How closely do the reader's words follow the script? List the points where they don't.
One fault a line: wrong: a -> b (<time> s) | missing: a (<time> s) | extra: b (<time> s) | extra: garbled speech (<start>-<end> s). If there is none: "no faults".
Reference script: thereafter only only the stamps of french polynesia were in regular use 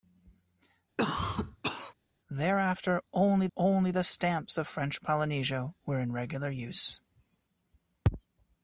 no faults